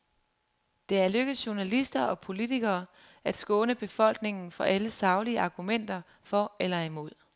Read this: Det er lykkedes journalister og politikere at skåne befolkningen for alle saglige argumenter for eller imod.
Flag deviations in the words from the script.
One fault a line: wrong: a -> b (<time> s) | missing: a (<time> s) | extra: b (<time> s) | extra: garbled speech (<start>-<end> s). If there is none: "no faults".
no faults